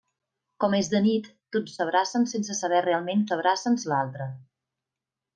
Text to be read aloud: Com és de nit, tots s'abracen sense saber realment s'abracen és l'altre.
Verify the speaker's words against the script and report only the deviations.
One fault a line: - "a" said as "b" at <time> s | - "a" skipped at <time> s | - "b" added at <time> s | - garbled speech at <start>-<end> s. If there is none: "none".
none